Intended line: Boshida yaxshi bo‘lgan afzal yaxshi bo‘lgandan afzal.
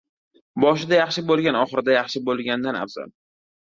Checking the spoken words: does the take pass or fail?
fail